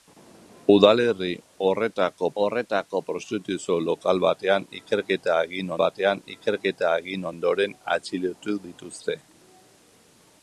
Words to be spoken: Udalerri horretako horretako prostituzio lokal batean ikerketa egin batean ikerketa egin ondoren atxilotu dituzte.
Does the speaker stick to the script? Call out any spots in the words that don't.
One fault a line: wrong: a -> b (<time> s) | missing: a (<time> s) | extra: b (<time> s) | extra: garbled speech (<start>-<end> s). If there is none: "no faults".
no faults